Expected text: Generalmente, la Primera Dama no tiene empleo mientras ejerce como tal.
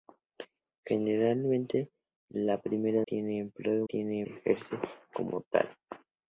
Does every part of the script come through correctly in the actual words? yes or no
no